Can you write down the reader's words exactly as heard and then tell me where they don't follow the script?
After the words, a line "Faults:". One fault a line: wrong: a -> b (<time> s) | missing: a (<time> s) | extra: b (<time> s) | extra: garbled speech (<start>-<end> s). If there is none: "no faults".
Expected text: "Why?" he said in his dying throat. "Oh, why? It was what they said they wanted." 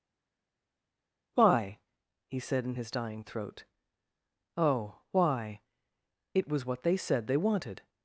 "Why?" he said in his dying throat. "Oh, why? It was what they said they wanted."
Faults:
no faults